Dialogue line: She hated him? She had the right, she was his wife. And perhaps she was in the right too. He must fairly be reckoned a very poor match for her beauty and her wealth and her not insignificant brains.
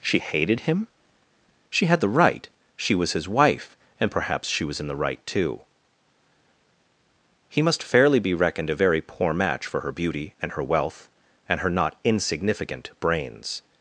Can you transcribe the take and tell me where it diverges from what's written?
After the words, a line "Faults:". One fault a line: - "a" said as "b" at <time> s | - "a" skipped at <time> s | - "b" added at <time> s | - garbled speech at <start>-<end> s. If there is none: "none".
She hated him? She had the right, she was his wife. And perhaps she was in the right too. He must fairly be reckoned a very poor match for her beauty and her wealth and her not insignificant brains.
Faults:
none